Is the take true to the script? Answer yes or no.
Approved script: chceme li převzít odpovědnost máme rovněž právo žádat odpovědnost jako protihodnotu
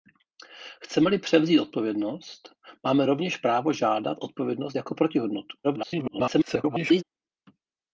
no